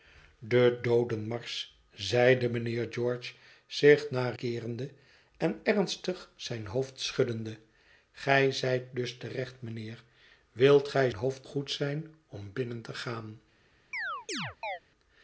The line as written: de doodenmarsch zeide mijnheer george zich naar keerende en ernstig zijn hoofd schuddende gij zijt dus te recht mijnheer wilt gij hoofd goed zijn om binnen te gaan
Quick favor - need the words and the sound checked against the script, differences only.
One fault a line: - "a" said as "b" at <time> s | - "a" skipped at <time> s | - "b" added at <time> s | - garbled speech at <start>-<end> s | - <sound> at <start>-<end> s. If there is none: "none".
- chirp at 13.9-14.8 s